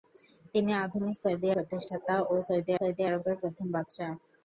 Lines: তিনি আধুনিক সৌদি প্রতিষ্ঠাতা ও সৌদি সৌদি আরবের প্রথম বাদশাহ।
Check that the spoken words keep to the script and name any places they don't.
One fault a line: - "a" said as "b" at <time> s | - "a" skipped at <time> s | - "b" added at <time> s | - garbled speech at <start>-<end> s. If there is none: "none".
none